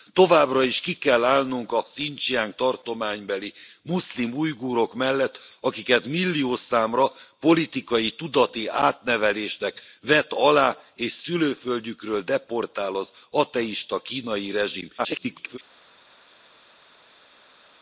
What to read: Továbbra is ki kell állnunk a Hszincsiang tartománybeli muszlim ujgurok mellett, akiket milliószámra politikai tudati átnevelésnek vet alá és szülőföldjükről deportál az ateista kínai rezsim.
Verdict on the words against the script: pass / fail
fail